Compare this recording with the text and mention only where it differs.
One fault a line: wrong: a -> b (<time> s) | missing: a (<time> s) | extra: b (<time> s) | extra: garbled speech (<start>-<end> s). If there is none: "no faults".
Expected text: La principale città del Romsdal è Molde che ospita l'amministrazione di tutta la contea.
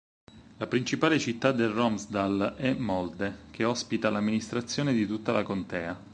no faults